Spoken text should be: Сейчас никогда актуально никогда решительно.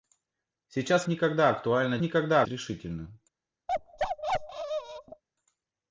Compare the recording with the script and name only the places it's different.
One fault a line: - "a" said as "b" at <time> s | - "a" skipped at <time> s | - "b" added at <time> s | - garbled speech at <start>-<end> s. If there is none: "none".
none